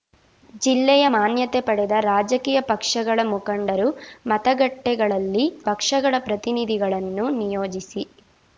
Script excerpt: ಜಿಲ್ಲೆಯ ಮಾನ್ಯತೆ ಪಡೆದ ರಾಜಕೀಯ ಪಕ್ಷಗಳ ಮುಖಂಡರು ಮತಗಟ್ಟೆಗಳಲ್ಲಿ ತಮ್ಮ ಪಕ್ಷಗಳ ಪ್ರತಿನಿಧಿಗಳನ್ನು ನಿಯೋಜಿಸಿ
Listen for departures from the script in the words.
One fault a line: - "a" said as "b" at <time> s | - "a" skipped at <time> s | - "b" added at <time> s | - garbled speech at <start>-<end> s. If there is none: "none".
- "ತಮ್ಮ" skipped at 5.5 s